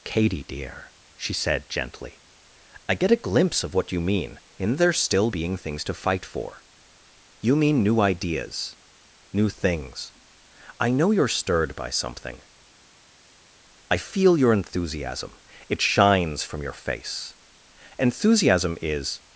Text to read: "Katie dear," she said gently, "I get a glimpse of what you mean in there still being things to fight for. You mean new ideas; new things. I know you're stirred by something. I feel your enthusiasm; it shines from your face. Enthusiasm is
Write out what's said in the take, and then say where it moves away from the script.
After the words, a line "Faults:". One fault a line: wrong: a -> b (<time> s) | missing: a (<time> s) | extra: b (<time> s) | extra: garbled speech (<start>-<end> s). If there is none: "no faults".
"Katie dear," she said gently, "I get a glimpse of what you mean in there still being things to fight for. You mean new ideas; new things. I know you're stirred by something. I feel your enthusiasm; it shines from your face. Enthusiasm is
Faults:
no faults